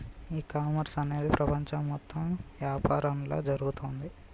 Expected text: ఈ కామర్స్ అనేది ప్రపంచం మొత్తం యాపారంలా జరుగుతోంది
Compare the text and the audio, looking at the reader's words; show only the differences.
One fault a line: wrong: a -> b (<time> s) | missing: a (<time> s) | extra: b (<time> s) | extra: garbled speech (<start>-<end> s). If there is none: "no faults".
no faults